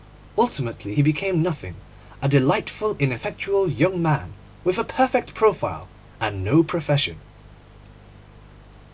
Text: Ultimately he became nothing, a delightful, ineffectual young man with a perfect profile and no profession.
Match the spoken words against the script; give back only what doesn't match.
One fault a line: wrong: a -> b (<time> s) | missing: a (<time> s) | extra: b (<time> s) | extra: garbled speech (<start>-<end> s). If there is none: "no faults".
no faults